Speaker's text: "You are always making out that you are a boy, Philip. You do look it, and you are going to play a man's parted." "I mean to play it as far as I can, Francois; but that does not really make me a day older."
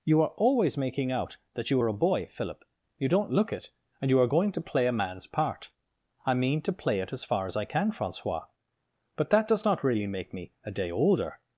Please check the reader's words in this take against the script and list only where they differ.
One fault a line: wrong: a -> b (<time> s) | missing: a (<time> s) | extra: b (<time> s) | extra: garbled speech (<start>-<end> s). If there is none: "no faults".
wrong: do -> don't (3.1 s)
wrong: parted -> part (5.3 s)